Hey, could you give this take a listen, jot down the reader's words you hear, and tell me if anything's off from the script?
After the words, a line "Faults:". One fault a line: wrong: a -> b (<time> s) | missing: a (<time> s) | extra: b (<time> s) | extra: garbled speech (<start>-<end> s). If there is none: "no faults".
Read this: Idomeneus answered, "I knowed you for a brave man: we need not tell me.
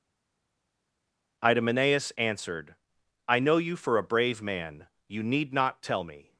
Idomeneus answered, "I know you for a brave man: you need not tell me.
Faults:
wrong: knowed -> know (3.4 s)
wrong: we -> you (5.1 s)